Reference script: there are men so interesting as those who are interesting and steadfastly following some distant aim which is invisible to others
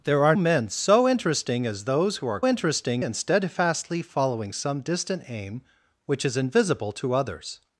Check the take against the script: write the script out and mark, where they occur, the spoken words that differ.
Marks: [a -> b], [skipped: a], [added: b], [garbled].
there are men so interesting as those who are interesting and steadfastly following some distant aim which is invisible to others